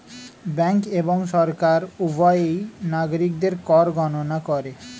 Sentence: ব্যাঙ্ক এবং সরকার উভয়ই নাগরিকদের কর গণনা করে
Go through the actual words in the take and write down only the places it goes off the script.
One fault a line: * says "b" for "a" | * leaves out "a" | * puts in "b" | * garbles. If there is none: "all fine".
all fine